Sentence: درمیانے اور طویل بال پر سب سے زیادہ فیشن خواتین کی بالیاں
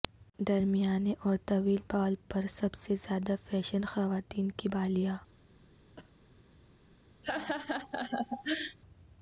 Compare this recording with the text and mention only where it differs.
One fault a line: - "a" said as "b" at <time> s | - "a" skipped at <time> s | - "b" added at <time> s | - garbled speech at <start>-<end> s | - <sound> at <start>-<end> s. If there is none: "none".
- cough at 6.0-6.1 s
- laugh at 7.2-8.8 s